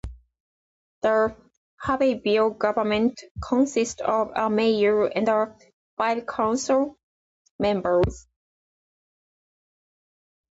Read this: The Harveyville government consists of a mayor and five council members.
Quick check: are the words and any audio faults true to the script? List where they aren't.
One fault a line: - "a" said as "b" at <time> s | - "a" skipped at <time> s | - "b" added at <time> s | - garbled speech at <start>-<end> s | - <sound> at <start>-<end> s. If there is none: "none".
none